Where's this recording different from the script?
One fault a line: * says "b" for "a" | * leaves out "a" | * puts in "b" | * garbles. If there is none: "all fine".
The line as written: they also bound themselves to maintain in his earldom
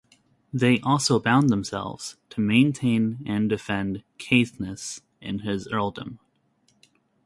* puts in "and defend caithness"